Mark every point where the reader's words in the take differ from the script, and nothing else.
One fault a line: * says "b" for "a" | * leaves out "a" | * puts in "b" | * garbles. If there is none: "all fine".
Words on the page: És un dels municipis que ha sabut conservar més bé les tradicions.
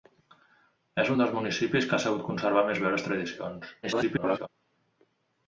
* garbles